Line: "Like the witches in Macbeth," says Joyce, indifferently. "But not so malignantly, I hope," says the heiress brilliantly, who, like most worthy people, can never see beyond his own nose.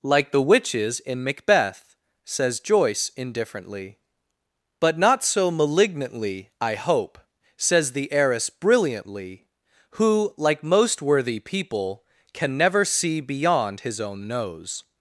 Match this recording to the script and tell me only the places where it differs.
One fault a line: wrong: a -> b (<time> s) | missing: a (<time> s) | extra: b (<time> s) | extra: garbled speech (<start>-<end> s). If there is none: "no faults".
no faults